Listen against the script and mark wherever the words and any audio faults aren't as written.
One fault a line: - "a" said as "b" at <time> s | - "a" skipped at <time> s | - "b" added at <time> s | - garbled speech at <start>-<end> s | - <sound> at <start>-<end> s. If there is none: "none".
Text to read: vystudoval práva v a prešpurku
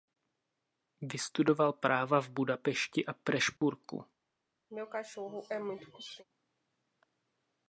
- "budapešti" added at 2.3 s
- dropout at 3.6-3.6 s
- throat clearing at 4.7-6.3 s